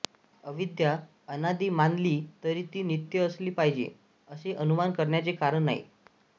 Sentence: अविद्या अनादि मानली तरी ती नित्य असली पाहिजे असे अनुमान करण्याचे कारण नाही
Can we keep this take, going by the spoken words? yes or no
yes